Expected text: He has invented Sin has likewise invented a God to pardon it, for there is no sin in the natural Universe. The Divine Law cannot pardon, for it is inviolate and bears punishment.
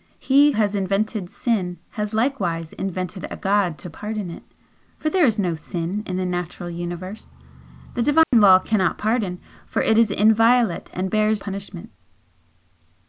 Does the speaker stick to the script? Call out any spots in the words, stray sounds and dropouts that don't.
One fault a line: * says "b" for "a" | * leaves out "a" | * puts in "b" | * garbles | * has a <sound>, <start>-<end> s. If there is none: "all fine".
* has a dropout, 8.2-8.3 s